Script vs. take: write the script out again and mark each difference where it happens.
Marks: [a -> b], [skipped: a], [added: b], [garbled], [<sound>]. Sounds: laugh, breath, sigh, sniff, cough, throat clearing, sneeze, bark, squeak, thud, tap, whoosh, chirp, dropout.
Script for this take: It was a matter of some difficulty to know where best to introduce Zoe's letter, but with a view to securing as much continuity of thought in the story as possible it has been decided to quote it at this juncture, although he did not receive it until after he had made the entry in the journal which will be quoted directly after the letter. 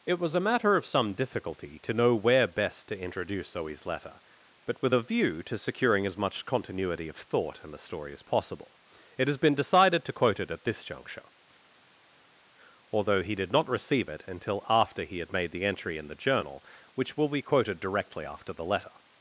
It was a matter of some difficulty to know where best to introduce Zoe's letter, but with a view to securing as much continuity of thought in the story as possible it has been decided to quote it at this juncture, although he did not receive it until after he had made the entry in the journal which will be quoted directly after the letter.